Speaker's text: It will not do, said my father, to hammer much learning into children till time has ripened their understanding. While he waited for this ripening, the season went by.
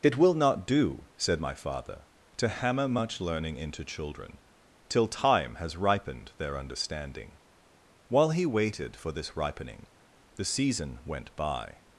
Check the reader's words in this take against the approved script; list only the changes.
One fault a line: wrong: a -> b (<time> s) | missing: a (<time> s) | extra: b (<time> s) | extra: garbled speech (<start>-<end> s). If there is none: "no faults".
no faults